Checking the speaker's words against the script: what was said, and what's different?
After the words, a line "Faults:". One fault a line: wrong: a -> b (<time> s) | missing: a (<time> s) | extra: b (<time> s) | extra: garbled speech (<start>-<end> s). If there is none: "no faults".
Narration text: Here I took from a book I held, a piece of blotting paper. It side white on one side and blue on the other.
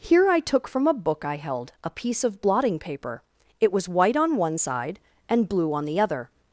Here I took from a book I held, a piece of blotting paper. It was white on one side and blue on the other.
Faults:
wrong: side -> was (3.7 s)